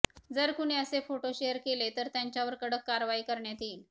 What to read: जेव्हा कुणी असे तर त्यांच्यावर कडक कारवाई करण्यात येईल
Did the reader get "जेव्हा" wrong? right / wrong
wrong